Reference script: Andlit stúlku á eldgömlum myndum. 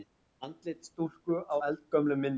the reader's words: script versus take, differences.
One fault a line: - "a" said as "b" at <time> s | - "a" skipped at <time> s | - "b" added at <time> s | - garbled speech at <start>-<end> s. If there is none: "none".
none